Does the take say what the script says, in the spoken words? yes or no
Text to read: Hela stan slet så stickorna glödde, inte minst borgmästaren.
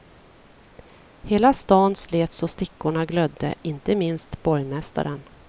yes